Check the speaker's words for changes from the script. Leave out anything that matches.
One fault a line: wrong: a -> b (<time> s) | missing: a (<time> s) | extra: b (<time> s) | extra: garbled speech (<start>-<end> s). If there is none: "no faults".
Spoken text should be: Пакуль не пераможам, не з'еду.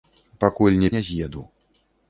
missing: пераможам (0.9 s)